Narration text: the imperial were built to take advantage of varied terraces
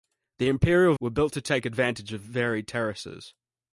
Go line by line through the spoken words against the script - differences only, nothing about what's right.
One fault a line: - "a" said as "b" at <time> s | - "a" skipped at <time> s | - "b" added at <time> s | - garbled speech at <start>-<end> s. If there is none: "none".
none